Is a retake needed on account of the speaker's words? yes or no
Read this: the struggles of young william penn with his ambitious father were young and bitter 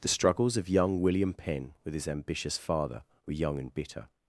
no